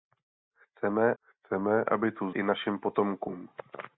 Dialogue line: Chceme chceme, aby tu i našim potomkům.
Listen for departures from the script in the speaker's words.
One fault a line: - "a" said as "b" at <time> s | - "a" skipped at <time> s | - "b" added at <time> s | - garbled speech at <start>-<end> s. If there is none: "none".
none